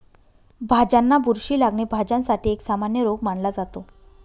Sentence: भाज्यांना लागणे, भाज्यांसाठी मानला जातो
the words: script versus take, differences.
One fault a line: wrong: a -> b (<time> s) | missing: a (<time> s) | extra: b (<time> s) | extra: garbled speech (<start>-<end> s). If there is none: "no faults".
extra: बुरशी (1.2 s)
extra: एक सामान्य रोग (2.5 s)